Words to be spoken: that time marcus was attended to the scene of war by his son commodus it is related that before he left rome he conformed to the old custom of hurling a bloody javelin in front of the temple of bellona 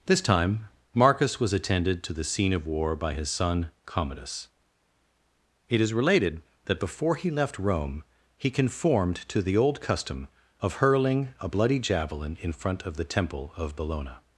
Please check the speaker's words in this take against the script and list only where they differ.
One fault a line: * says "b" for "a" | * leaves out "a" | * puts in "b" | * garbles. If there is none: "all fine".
* says "this" for "that"